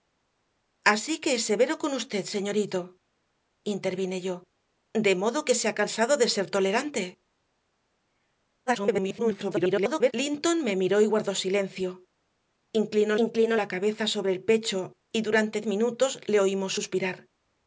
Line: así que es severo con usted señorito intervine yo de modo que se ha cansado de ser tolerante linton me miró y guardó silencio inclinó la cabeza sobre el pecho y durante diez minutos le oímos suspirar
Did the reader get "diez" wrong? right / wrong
wrong